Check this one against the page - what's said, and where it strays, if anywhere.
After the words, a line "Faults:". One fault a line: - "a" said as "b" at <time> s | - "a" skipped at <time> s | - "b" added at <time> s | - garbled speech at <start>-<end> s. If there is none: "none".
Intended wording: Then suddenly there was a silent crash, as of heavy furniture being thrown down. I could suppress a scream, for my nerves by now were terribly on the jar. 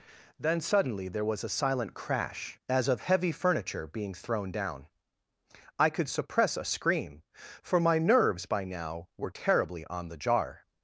Then suddenly there was a silent crash, as of heavy furniture being thrown down. I could suppress a scream, for my nerves by now were terribly on the jar.
Faults:
none